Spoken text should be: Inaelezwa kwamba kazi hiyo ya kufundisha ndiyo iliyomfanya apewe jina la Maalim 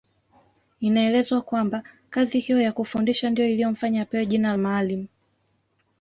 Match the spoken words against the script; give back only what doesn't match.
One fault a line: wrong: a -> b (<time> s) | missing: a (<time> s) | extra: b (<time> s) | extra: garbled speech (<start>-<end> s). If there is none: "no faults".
missing: la (4.5 s)